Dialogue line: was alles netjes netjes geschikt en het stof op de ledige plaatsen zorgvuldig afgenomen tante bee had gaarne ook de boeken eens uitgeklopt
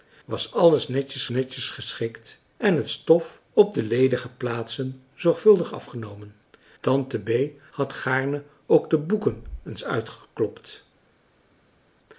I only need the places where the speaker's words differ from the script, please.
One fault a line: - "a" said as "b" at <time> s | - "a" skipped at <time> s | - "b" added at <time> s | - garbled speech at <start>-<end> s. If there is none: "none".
none